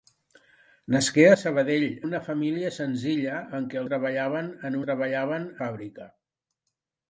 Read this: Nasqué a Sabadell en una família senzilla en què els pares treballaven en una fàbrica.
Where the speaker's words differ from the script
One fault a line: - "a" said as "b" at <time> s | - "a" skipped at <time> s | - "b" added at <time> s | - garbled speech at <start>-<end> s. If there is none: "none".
- "en" skipped at 1.9 s
- "els pares" skipped at 3.8 s
- "una" said as "treballaven" at 4.9 s